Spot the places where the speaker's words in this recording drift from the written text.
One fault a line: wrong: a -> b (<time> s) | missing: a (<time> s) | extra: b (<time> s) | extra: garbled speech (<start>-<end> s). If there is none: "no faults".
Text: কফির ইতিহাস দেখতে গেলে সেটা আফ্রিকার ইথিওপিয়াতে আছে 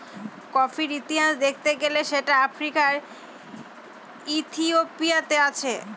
no faults